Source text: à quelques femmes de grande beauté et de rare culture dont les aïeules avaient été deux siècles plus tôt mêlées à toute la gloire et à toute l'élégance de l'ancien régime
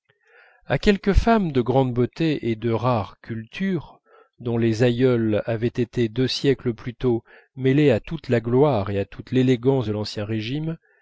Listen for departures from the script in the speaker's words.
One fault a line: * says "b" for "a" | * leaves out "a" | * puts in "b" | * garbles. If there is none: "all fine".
all fine